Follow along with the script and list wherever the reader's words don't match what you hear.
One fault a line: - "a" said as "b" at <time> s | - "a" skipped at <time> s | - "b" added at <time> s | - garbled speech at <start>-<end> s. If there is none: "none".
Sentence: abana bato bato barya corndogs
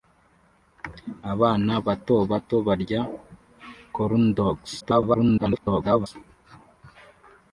- garbled speech at 4.8-6.1 s